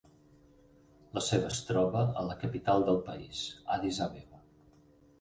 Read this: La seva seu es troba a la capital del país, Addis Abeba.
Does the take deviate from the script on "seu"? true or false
true